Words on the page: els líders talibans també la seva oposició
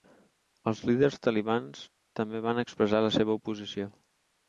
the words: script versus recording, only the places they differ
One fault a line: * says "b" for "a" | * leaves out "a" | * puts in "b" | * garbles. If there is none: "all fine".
* puts in "van expressar"